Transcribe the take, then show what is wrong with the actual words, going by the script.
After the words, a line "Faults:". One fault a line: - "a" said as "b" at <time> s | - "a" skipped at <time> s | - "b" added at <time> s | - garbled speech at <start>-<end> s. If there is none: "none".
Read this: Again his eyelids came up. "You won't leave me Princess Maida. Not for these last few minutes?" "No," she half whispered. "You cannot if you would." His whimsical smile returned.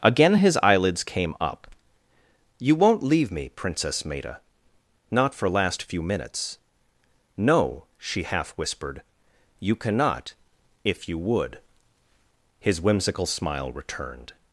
Again his eyelids came up. "You won't leave me Princess Maida. Not for last few minutes?" "No," she half whispered. "You cannot if you would." His whimsical smile returned.
Faults:
- "these" skipped at 5.5 s